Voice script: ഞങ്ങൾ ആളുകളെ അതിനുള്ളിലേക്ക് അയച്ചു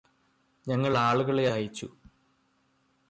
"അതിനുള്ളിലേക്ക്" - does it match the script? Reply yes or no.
no